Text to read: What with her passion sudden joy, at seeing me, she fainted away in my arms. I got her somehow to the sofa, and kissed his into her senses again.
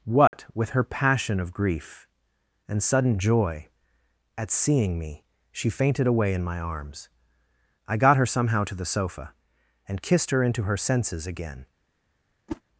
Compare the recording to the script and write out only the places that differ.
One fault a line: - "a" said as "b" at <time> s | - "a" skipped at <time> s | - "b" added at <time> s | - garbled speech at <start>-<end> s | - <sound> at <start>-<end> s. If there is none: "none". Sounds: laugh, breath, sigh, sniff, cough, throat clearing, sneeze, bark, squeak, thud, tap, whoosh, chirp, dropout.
- dropout at 0.3-0.3 s
- "of grief and" added at 1.4 s
- "his" said as "her" at 10.3 s
- whoosh at 12.5-12.6 s